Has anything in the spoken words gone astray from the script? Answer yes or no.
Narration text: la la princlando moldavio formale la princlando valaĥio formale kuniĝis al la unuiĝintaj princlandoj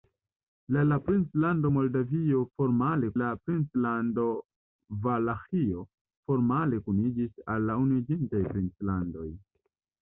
no